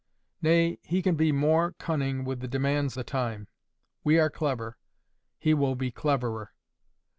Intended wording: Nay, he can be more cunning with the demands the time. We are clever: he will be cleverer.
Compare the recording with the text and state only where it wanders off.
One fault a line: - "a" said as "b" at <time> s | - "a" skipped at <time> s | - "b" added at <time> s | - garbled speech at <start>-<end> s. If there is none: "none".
none